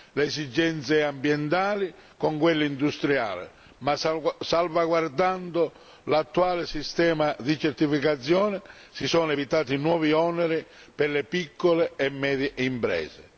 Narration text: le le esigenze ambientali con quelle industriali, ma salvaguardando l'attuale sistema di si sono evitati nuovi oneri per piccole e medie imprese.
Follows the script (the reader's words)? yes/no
no